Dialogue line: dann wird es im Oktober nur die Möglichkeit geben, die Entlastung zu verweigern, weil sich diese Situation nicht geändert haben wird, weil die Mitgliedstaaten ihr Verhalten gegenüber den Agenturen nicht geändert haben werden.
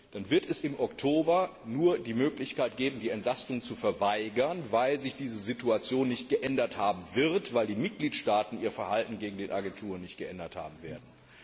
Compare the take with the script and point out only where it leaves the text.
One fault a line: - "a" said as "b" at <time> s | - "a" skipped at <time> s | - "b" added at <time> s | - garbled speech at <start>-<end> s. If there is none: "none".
none